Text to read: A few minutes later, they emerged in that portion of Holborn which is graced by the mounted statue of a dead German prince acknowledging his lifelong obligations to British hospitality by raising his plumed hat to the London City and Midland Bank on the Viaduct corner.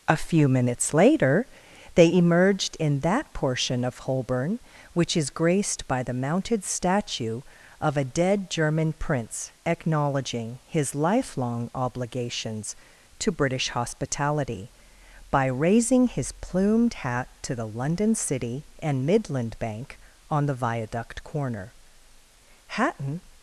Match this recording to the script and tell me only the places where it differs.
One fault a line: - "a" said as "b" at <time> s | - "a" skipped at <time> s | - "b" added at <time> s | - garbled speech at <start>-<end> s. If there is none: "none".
- "Hatton" added at 22.7 s